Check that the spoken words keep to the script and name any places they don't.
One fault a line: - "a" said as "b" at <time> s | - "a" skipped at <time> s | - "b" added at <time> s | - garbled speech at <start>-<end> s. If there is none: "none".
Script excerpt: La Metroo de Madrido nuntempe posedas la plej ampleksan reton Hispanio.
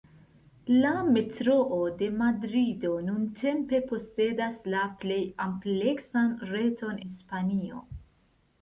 none